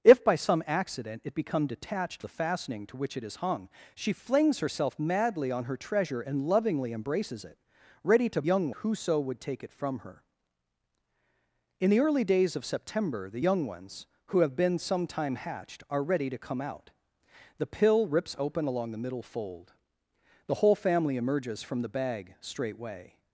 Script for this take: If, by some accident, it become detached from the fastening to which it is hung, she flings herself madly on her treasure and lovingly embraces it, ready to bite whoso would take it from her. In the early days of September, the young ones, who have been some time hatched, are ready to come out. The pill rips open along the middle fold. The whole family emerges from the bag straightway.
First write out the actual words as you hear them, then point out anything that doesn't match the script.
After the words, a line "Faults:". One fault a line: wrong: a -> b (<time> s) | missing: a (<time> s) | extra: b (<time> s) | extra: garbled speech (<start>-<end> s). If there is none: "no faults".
If, by some accident, it become detached the fastening to which it is hung, she flings herself madly on her treasure and lovingly embraces it, ready to young whoso would take it from her. In the early days of September, the young ones, who have been some time hatched, are ready to come out. The pill rips open along the middle fold. The whole family emerges from the bag straightway.
Faults:
missing: from (2.2 s)
wrong: bite -> young (8.4 s)